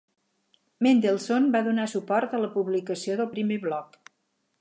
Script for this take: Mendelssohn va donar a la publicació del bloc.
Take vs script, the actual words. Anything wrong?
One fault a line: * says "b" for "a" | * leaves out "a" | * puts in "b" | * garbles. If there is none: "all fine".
* puts in "suport"
* puts in "primer"